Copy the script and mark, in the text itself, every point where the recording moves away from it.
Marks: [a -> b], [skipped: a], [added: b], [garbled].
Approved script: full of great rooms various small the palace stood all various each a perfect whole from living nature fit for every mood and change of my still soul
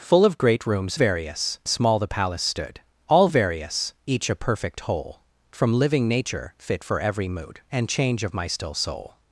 full of great rooms various small the palace stood all various each a perfect whole from living nature fit for every mood and change of my still soul